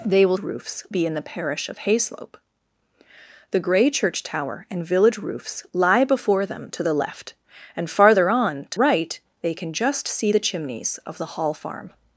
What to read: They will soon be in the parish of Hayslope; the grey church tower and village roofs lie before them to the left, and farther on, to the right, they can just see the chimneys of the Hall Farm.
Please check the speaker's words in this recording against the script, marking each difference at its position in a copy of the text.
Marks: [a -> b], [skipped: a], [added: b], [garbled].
They will [soon -> roofs] be in the parish of Hayslope; the grey church tower and village roofs lie before them to the left, and farther on, to [skipped: the] right, they can just see the chimneys of the Hall Farm.